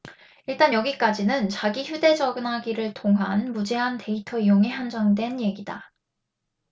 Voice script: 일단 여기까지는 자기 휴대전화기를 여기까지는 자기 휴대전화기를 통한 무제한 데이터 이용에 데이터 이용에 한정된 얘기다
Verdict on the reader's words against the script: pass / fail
fail